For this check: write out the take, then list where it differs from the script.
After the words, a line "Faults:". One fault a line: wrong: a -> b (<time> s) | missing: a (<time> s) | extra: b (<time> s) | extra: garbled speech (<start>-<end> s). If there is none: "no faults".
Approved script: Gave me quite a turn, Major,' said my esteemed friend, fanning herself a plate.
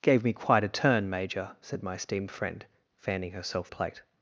Gave me quite a turn, Major,' said my esteemed friend, fanning herself a plate.
Faults:
no faults